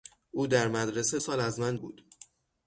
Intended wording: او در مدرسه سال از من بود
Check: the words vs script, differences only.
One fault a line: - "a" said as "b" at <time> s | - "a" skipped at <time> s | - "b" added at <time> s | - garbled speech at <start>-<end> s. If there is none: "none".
none